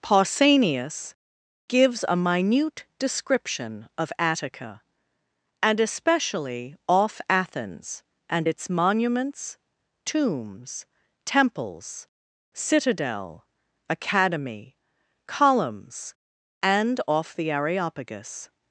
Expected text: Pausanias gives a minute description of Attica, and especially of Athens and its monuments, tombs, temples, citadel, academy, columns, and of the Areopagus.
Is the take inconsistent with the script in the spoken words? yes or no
yes